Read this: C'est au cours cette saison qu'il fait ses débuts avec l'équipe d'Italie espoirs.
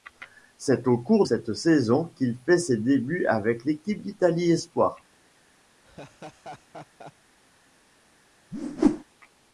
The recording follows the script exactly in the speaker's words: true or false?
true